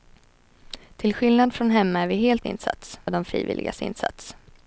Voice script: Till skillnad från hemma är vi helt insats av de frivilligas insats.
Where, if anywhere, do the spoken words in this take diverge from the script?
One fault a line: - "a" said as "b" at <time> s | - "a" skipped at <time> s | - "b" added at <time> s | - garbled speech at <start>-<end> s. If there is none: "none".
none